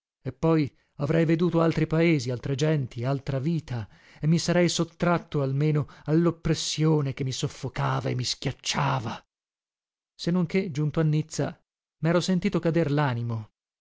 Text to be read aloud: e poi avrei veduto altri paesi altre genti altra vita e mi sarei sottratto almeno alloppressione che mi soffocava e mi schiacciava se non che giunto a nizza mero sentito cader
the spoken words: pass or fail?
pass